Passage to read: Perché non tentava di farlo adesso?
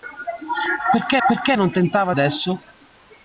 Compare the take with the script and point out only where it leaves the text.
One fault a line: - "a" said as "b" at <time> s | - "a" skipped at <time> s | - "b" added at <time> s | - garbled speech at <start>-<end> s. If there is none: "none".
- "perché" added at 1.3 s
- "di farlo" skipped at 2.1 s